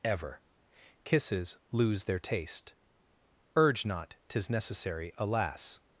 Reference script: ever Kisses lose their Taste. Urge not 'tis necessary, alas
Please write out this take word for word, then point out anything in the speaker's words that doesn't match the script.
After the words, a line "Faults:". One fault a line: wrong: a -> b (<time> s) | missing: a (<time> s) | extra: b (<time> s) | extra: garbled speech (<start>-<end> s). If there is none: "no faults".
ever Kisses lose their Taste. Urge not 'tis necessary, alas
Faults:
no faults